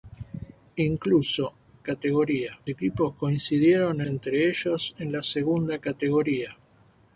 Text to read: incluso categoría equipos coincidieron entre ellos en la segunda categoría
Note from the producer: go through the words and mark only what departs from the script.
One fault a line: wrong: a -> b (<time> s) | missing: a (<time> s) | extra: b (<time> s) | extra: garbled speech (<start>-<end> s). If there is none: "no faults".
no faults